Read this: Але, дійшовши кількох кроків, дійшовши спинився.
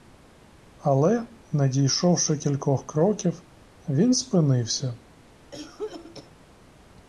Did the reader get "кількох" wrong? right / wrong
right